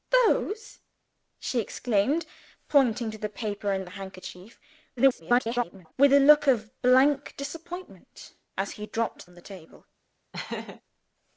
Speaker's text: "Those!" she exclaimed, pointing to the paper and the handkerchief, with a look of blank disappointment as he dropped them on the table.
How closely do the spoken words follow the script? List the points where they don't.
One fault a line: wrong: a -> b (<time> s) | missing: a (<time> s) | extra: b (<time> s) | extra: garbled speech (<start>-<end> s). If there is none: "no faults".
extra: garbled speech (5.0-5.9 s)
missing: them (9.3 s)